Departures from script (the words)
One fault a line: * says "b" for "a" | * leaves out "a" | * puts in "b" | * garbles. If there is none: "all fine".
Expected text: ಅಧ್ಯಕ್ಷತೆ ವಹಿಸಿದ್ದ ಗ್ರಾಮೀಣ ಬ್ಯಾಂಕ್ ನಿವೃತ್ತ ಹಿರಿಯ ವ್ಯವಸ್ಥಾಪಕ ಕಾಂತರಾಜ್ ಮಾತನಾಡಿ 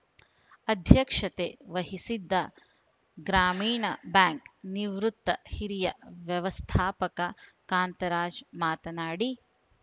all fine